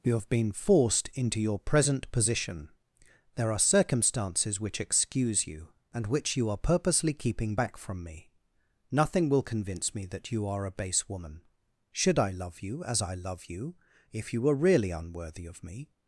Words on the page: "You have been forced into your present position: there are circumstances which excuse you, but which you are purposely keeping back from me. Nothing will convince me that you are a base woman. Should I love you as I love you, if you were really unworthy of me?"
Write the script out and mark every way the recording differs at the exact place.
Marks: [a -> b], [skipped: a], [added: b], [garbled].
"You have been forced into your present position: there are circumstances which excuse you, [but -> and] which you are purposely keeping back from me. Nothing will convince me that you are a base woman. Should I love you as I love you, if you were really unworthy of me?"